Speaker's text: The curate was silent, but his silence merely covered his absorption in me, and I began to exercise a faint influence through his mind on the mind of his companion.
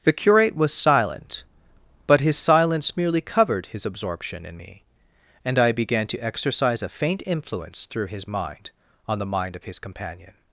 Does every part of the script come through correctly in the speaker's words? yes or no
yes